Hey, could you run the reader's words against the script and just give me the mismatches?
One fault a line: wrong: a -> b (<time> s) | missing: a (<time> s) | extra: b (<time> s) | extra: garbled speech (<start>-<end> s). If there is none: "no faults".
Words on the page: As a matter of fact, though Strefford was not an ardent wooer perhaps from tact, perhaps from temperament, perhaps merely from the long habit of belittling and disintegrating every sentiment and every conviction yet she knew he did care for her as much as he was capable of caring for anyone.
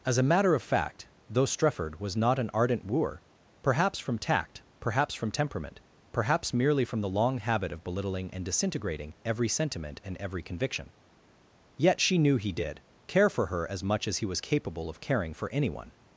no faults